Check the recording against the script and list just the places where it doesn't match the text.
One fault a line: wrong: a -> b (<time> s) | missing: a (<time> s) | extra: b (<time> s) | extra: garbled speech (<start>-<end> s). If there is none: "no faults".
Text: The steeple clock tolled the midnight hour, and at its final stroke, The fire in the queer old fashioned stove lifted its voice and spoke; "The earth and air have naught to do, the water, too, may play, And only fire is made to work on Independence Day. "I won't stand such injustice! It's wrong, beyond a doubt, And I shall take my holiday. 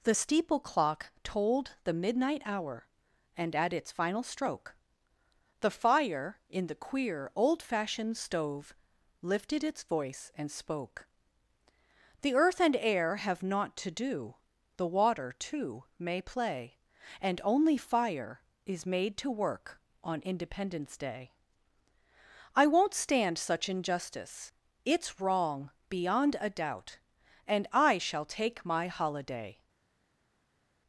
no faults